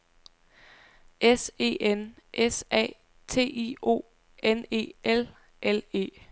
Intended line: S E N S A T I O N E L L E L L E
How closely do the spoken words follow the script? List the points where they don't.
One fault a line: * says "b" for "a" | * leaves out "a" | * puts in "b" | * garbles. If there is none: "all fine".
* leaves out "L L E"